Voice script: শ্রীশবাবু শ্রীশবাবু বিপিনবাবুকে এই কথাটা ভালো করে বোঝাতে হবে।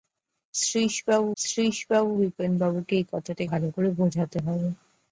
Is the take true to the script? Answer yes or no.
yes